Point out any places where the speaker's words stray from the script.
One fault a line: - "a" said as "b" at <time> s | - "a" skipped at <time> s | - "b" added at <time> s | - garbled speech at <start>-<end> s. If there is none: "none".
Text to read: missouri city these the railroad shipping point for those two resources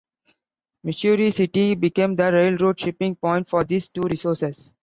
- "these" said as "became" at 1.7 s
- "those" said as "these" at 3.6 s